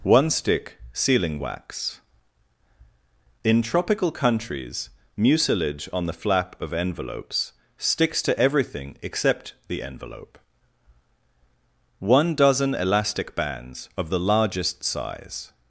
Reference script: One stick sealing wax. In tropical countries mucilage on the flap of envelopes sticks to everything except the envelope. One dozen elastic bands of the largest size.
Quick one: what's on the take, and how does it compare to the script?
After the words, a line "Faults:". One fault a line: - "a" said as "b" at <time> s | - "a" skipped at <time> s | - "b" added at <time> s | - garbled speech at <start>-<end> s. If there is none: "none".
One stick sealing wax. In tropical countries mucilage on the flap of envelopes sticks to everything except the envelope. One dozen elastic bands of the largest size.
Faults:
none